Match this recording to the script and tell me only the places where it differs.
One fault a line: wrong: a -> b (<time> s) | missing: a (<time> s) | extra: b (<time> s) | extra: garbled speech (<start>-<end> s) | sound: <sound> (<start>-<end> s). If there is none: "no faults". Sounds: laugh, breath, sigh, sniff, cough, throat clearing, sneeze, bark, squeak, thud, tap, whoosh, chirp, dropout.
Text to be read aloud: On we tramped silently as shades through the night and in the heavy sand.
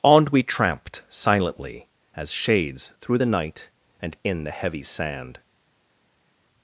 no faults